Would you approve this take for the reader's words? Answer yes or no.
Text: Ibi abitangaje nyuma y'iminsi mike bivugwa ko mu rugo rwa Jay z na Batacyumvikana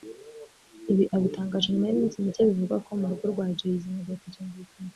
yes